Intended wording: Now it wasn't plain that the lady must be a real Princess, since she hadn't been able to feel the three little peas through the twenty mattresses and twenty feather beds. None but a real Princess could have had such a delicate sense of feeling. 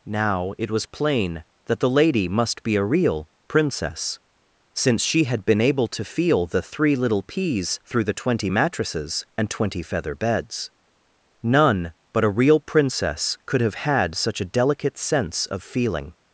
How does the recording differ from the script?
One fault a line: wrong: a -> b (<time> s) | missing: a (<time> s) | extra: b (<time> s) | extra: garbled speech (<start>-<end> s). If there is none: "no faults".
wrong: wasn't -> was (0.7 s)
wrong: hadn't -> had (5.2 s)